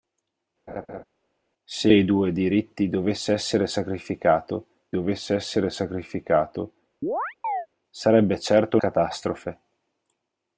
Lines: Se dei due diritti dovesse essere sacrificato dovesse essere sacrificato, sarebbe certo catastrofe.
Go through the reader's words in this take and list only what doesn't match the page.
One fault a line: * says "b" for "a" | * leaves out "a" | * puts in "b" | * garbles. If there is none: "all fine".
all fine